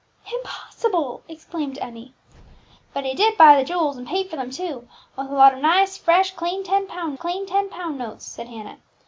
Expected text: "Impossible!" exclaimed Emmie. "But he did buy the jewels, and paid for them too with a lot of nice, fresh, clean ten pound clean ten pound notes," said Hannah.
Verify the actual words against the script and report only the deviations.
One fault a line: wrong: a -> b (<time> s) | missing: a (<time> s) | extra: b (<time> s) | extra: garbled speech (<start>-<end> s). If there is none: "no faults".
no faults